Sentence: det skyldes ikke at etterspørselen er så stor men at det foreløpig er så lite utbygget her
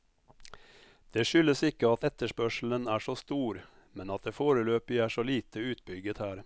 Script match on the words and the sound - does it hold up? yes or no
yes